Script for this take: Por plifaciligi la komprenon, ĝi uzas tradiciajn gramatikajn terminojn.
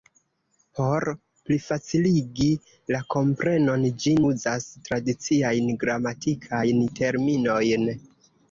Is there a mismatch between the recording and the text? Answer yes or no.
no